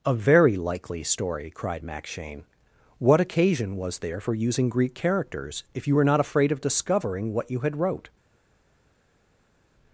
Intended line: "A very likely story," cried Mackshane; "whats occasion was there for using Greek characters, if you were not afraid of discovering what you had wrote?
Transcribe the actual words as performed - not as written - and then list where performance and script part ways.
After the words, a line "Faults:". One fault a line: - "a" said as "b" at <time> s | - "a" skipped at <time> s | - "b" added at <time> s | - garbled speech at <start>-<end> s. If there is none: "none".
"A very likely story," cried Mackshane; "what occasion was there for using Greek characters, if you were not afraid of discovering what you had wrote?
Faults:
- "whats" said as "what" at 3.0 s